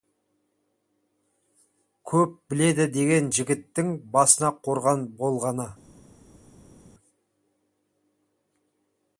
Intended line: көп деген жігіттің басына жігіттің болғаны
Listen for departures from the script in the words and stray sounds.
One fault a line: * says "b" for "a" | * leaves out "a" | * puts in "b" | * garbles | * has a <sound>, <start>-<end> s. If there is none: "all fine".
* puts in "біледі"
* says "қорған" for "жігіттің"